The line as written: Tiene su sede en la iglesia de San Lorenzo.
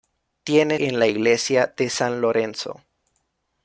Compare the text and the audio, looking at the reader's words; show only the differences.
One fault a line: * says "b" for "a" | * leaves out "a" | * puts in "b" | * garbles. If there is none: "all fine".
* leaves out "su sede"